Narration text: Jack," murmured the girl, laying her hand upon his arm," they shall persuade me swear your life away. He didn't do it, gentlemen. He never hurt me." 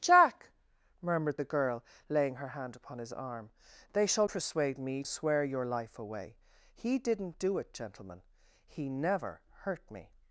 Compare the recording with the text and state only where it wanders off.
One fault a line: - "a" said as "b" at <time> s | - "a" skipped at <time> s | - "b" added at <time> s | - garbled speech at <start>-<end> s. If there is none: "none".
none